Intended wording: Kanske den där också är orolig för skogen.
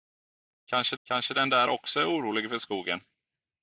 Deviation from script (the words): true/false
true